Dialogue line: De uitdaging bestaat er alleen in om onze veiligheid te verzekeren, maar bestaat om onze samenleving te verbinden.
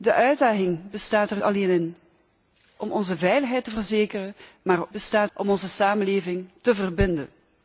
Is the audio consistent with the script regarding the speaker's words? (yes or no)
yes